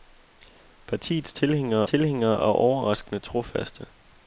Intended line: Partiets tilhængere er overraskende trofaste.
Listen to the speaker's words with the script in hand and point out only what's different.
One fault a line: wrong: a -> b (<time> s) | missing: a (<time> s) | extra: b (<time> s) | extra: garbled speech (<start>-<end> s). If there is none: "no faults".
extra: tilhængere (1.8 s)